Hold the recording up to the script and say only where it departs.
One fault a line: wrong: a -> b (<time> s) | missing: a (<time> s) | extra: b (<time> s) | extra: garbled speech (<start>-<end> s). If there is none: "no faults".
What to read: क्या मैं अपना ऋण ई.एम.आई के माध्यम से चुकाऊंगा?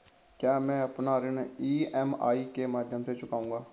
no faults